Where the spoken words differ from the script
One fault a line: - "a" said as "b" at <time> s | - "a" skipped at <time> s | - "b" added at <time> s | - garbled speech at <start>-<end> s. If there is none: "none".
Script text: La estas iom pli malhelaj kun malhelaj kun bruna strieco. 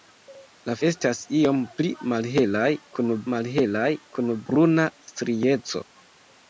none